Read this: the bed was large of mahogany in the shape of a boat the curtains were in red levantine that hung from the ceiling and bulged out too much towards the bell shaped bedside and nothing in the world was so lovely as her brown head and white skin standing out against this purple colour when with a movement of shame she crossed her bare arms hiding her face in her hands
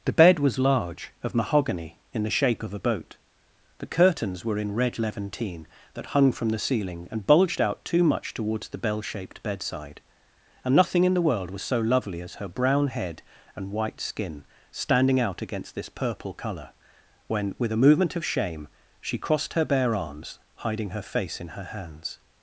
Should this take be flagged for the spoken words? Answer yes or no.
no